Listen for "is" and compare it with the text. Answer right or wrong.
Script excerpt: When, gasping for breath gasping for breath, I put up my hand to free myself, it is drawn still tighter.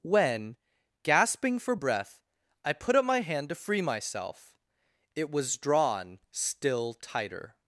wrong